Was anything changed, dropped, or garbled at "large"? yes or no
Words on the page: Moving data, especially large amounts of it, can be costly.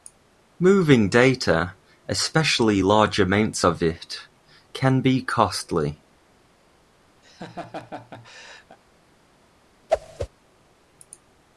no